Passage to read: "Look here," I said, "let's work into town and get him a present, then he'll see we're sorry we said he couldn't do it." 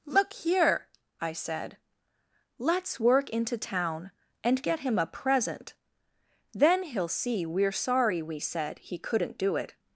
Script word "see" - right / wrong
right